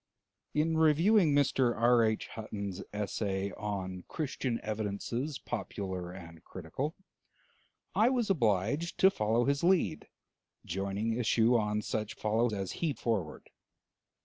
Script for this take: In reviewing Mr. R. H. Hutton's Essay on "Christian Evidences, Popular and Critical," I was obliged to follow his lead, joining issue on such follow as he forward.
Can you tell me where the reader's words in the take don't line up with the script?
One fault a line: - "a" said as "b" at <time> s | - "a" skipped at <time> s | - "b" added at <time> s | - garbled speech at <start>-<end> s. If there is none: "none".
none